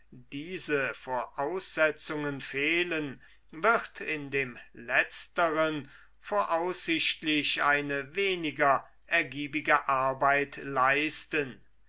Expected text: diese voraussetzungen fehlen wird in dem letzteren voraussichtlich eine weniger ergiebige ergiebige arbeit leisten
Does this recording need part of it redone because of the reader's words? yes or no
yes